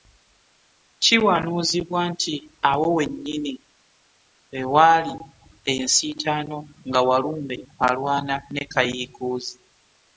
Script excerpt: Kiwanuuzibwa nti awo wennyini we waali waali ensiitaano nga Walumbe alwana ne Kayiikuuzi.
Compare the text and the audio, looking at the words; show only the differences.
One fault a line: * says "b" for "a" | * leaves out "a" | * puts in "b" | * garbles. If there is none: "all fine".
* leaves out "waali"